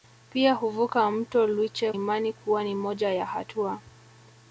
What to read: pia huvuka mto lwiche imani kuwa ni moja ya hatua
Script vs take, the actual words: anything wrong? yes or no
no